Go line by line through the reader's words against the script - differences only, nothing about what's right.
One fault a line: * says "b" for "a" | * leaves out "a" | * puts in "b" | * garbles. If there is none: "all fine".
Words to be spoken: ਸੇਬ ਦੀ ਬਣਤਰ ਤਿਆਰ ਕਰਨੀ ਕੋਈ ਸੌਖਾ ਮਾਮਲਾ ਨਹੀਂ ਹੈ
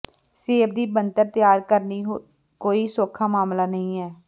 all fine